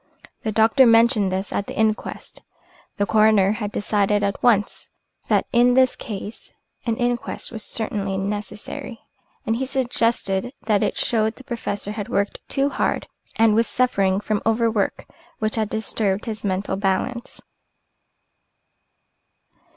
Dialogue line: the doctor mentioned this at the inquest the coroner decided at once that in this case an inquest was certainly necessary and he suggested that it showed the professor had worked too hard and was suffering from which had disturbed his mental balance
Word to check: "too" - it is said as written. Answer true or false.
true